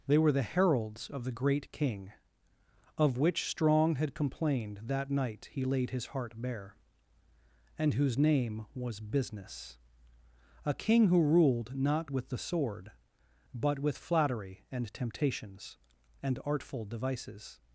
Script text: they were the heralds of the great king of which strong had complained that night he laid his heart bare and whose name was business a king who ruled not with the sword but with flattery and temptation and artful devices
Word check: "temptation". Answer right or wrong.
wrong